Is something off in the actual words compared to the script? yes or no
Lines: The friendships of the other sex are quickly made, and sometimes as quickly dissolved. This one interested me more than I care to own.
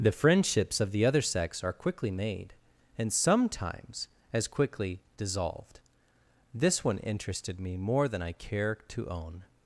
no